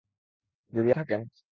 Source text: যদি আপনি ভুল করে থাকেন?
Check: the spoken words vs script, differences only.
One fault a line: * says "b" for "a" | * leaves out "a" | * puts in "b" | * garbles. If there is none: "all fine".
* leaves out "আপনি ভুল করে"